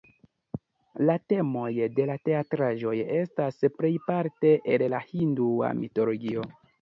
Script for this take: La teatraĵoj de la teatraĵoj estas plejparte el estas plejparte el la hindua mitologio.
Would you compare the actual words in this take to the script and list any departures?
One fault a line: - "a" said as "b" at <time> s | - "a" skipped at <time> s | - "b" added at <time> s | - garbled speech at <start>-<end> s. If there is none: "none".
- "teatraĵoj" said as "temoj" at 1.3 s
- "estas plejparte el" skipped at 4.9 s